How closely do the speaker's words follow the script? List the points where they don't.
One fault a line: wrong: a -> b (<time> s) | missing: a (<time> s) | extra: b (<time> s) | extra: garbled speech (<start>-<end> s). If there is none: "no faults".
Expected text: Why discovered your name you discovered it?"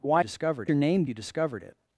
no faults